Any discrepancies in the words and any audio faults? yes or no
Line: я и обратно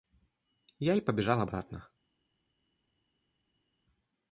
yes